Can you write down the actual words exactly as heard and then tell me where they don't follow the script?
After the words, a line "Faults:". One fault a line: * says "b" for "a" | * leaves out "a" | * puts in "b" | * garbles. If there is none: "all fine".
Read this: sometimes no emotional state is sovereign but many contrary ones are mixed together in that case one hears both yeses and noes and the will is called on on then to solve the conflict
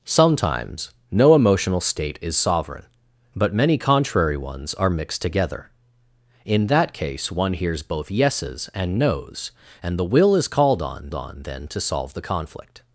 sometimes no emotional state is sovereign but many contrary ones are mixed together in that case one hears both yeses and noes and the will is called on on then to solve the conflict
Faults:
all fine